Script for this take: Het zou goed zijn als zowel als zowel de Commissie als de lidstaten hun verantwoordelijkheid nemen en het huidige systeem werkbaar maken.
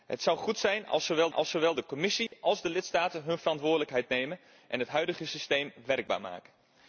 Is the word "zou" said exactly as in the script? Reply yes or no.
yes